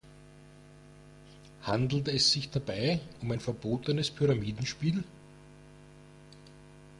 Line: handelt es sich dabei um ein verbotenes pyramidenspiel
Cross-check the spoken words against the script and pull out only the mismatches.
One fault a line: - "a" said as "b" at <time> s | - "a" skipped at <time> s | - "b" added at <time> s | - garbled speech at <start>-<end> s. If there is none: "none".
none